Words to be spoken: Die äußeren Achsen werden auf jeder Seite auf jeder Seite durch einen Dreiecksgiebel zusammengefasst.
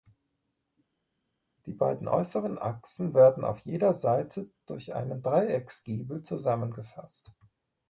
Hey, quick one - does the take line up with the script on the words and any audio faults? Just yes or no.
no